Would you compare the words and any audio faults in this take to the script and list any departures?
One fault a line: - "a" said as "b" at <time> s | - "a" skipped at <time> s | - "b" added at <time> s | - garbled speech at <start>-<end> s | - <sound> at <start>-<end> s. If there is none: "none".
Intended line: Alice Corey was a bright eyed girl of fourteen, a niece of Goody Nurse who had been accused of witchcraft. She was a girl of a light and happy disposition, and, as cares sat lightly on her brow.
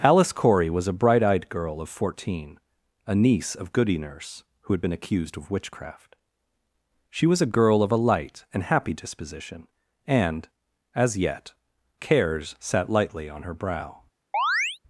- "yet" added at 11.2 s
- chirp at 14.3-14.8 s